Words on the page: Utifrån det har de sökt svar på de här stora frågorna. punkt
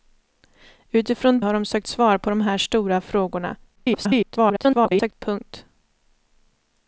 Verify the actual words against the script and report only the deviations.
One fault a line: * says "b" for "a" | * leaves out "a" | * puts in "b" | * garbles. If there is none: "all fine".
* leaves out "det"
* garbles